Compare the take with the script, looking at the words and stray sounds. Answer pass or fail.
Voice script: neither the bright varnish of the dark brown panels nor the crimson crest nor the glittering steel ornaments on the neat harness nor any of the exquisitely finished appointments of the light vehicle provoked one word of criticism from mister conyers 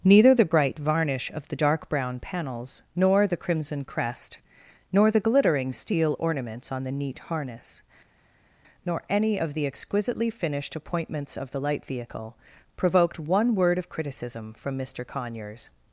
pass